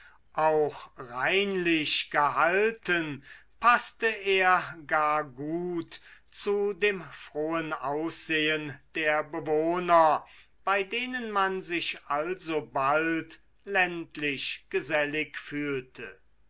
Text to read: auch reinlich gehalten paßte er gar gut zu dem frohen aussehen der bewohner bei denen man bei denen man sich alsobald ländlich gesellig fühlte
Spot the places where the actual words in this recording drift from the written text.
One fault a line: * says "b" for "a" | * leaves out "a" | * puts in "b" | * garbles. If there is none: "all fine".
* leaves out "bei denen man"